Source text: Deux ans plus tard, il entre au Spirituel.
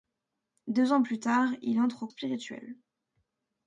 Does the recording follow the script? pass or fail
pass